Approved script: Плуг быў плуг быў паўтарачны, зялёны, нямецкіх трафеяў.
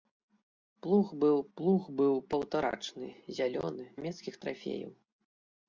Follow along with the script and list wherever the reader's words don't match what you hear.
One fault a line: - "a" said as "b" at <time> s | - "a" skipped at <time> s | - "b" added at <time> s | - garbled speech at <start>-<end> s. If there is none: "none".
none